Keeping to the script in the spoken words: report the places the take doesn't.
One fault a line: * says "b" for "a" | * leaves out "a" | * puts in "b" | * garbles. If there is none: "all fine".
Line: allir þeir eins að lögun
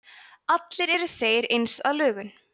* puts in "eru"